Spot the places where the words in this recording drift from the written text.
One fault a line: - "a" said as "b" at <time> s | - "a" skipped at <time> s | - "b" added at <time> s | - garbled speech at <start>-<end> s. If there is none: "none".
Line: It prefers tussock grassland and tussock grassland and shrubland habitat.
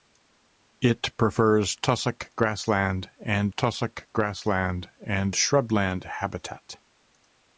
none